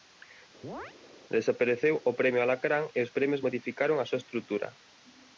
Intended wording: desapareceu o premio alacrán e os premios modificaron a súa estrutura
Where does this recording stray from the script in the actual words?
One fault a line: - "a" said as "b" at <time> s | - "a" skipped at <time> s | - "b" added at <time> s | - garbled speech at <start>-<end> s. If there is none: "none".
none